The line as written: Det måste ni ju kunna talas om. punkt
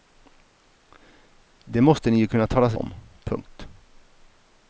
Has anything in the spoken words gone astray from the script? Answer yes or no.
no